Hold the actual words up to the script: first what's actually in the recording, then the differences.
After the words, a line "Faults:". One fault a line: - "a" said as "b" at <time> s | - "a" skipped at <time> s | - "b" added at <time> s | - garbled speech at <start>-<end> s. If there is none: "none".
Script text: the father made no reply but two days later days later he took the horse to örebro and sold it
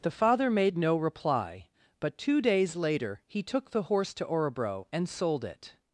the father made no reply but two days later he took the horse to örebro and sold it
Faults:
- "days later" skipped at 3.2 s